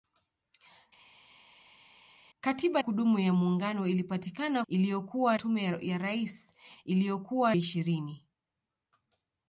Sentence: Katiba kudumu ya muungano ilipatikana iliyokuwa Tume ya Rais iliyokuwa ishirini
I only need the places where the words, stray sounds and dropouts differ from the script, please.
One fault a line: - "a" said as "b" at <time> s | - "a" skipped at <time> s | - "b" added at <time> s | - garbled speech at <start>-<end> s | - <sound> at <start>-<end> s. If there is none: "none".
none